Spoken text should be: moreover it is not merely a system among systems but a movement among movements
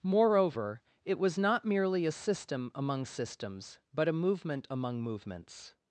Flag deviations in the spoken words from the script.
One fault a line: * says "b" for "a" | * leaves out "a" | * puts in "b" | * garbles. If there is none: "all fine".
* says "was" for "is"